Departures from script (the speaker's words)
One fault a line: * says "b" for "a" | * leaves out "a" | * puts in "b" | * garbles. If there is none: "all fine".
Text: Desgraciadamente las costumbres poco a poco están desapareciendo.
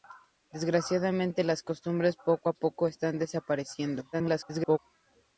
* garbles